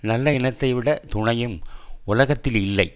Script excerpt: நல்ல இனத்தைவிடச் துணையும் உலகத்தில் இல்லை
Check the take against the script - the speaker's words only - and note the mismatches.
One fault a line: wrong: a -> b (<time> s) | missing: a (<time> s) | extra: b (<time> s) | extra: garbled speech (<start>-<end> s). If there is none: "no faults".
no faults